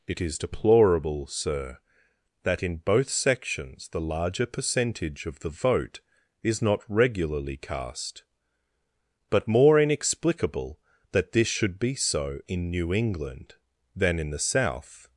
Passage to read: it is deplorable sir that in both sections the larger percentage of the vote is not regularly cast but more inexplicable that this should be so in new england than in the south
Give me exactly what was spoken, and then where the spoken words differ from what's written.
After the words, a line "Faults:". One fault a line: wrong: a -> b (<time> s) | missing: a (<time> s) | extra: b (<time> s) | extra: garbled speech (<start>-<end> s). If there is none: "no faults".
it is deplorable sir that in both sections the larger percentage of the vote is not regularly cast but more inexplicable that this should be so in new england than in the south
Faults:
no faults